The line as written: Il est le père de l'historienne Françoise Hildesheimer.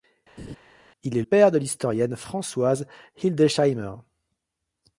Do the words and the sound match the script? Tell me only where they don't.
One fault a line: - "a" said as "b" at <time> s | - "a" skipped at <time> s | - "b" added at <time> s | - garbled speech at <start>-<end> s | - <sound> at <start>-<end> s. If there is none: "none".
- laugh at 0.4-0.6 s
- "le" skipped at 1.2 s